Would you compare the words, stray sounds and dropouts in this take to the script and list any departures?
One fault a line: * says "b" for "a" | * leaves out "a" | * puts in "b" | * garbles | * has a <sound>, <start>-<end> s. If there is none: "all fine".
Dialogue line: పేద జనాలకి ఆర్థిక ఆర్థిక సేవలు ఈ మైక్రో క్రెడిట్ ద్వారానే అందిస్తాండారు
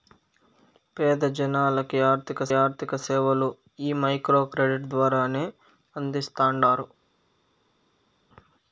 all fine